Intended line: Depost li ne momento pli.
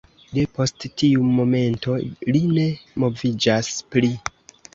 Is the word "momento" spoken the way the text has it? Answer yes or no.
no